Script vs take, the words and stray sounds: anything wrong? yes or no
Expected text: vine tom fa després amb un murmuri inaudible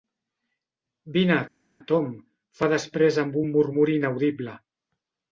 no